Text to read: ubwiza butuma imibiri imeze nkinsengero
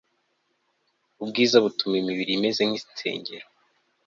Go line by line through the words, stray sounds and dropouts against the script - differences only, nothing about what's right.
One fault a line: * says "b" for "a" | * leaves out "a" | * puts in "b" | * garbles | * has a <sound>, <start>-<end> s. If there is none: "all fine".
all fine